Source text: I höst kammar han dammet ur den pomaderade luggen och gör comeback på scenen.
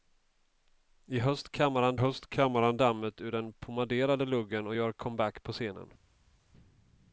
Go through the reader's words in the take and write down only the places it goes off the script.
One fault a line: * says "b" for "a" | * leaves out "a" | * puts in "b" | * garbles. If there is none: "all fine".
* puts in "höst kammar han"